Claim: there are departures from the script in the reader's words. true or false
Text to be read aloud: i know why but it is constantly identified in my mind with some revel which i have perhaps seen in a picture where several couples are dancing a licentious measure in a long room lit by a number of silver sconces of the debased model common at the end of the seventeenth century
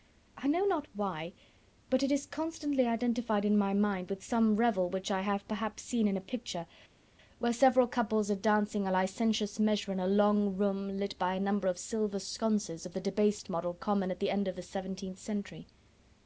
true